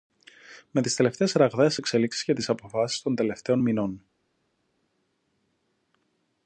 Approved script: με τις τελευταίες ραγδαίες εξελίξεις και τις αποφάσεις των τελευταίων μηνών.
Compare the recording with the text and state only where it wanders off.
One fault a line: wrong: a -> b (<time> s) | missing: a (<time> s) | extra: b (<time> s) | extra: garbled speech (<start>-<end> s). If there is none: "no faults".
no faults